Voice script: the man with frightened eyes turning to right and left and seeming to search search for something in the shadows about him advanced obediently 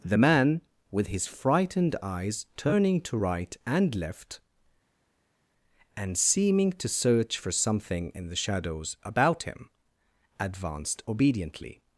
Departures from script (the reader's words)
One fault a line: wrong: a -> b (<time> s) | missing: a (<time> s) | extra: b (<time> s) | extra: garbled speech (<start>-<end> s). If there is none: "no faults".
extra: his (1.1 s)
missing: search (7.4 s)